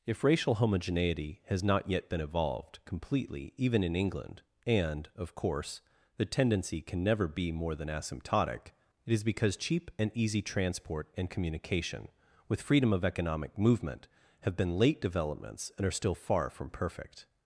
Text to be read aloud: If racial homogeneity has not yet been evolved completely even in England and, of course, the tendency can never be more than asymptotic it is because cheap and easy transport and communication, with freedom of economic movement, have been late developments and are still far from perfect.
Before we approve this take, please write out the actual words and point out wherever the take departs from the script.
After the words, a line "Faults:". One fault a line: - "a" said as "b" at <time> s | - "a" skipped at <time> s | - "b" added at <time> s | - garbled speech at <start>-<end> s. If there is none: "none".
If racial homogeneity has not yet been evolved completely even in England and, of course, the tendency can never be more than asymptotic it is because cheap and easy transport and communication, with freedom of economic movement, have been late developments and are still far from perfect.
Faults:
none